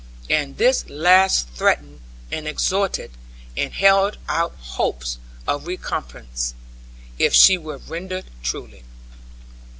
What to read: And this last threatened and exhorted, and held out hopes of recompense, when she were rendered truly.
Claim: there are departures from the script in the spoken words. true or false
true